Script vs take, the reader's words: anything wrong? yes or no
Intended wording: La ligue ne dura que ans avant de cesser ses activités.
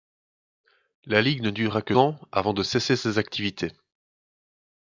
no